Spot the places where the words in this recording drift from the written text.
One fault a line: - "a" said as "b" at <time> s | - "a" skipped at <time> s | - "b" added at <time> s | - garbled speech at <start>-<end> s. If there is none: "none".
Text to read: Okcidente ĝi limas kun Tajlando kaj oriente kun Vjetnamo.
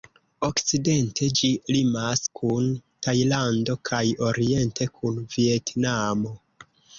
none